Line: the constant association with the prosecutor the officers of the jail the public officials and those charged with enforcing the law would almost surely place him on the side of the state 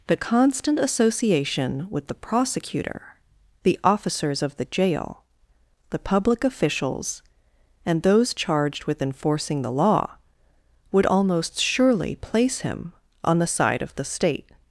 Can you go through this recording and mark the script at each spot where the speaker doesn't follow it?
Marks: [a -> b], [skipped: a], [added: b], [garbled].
the constant association with the prosecutor the officers of the jail the public officials and those charged with enforcing the law would almost surely place him on the side of the state